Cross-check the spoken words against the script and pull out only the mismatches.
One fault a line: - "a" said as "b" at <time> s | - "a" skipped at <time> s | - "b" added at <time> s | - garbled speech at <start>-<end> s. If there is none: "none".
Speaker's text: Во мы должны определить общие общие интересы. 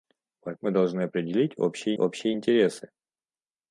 none